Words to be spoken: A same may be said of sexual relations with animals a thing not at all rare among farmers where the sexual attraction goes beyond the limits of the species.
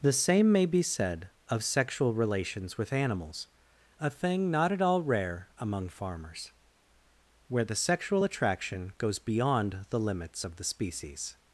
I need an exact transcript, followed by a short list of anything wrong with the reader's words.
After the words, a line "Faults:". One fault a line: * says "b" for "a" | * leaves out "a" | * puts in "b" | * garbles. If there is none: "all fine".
The same may be said of sexual relations with animals a thing not at all rare among farmers where the sexual attraction goes beyond the limits of the species.
Faults:
* says "The" for "A"